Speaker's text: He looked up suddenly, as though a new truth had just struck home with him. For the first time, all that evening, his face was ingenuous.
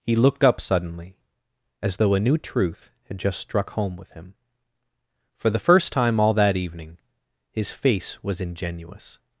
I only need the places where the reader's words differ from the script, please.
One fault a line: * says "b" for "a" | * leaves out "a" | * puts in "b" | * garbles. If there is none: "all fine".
all fine